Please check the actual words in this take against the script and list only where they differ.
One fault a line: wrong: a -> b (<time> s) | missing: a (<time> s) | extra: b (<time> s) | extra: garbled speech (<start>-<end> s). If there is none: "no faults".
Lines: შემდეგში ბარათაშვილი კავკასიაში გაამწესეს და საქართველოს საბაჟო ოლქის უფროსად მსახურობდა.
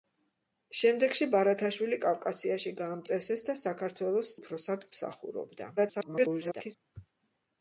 missing: საბაჟო ოლქის (4.3 s)
extra: garbled speech (5.8-6.8 s)